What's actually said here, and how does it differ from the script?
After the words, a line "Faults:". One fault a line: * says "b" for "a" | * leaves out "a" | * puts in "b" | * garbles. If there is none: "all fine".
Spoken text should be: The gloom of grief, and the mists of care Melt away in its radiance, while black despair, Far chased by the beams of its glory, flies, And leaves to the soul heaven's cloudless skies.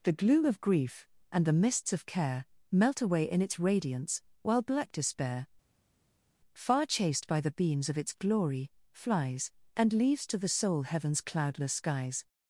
The gloom of grief, and the mists of care Melt away in its radiance, while black despair, Far chased by the beams of its glory, flies, And leaves to the soul heaven's cloudless skies.
Faults:
all fine